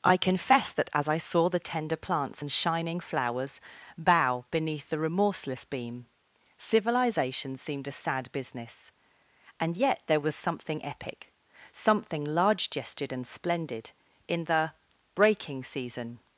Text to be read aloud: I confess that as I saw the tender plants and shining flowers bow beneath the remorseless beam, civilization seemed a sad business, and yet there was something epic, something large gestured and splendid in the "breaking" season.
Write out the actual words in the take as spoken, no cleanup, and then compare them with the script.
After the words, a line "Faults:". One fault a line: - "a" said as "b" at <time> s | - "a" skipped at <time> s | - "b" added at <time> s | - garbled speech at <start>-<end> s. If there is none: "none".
I confess that as I saw the tender plants and shining flowers bow beneath the remorseless beam, civilization seemed a sad business, and yet there was something epic, something large gestured and splendid in the "breaking" season.
Faults:
none